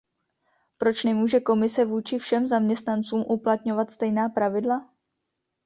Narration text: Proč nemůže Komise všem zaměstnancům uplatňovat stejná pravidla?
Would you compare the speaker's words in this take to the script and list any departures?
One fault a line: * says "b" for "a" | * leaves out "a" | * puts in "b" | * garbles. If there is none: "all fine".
* puts in "vůči"